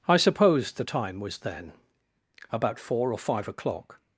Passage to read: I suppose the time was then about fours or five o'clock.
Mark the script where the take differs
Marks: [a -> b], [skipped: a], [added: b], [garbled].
I suppose the time was then about [fours -> four] or five o'clock.